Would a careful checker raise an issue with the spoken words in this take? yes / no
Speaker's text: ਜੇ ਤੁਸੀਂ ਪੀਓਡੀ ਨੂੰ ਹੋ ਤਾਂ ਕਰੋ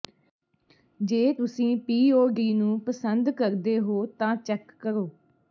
yes